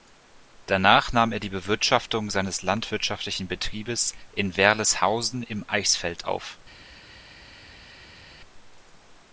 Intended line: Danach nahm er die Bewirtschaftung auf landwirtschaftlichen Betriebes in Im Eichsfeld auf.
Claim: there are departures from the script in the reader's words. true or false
true